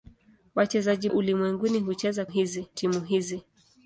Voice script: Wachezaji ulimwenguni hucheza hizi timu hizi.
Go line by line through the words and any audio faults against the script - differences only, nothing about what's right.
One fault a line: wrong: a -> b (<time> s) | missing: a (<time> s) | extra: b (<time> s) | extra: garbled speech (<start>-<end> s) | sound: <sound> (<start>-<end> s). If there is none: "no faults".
no faults